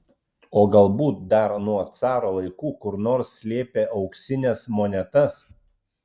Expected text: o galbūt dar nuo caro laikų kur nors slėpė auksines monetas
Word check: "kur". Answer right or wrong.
right